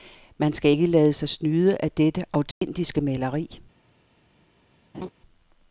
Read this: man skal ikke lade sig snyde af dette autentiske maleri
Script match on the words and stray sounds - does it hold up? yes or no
no